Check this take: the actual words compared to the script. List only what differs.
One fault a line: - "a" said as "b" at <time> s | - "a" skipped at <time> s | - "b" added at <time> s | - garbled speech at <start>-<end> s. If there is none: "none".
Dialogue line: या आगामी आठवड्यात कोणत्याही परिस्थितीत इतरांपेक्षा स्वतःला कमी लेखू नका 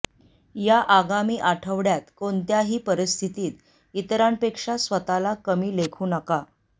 none